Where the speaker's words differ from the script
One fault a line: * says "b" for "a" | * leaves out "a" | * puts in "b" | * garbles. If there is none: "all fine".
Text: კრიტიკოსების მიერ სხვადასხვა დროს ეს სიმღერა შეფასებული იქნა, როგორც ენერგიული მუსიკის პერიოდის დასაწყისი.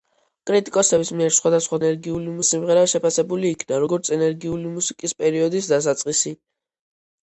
* says "ენერგიული" for "დროს"